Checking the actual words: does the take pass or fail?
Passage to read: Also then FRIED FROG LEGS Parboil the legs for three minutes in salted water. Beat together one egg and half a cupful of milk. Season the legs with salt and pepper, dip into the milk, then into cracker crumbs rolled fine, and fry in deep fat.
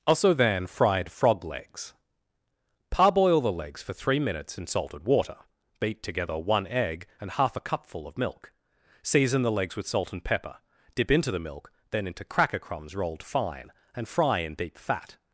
pass